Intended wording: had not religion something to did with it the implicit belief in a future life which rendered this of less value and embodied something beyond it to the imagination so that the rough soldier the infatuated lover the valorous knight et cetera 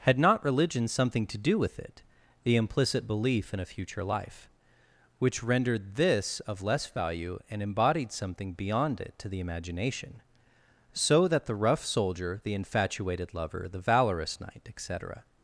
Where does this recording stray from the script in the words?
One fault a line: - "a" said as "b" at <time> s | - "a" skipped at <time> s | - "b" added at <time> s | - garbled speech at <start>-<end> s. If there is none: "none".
- "did" said as "do" at 1.4 s